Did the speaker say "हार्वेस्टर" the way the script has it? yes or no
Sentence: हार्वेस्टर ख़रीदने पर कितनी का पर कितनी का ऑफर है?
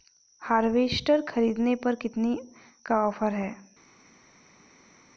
yes